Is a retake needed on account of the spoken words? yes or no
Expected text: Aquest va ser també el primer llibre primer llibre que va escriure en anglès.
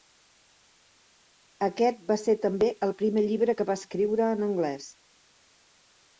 yes